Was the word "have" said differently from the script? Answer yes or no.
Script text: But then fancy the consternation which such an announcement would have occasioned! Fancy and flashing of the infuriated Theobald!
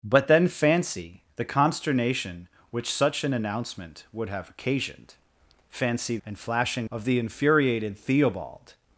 no